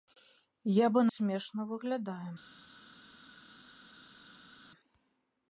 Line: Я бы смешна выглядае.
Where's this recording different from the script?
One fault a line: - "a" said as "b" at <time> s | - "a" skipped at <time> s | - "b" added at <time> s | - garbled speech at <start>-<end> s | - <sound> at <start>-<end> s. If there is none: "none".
none